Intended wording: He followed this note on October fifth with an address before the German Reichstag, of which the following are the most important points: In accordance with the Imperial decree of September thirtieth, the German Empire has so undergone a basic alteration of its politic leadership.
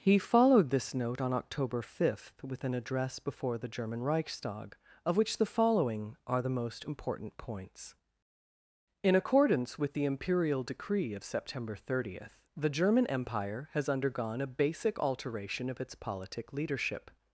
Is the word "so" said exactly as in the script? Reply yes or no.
no